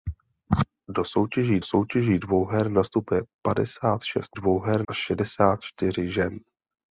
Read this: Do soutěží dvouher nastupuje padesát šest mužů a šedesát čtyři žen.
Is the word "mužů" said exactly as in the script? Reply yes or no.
no